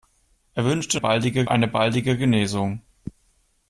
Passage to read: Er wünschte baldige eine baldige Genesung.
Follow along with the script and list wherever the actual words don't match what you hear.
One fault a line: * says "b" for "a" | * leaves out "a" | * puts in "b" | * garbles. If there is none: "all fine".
all fine